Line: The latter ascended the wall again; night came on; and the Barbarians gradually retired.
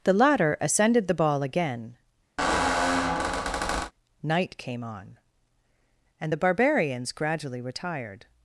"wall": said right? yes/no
no